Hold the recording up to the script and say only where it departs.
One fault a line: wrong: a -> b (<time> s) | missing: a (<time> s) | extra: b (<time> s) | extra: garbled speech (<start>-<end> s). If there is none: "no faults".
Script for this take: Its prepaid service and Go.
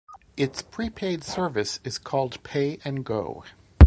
extra: is called Pay (1.8 s)